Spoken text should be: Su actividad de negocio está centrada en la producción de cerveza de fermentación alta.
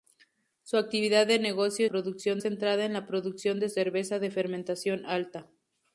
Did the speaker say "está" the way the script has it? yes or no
no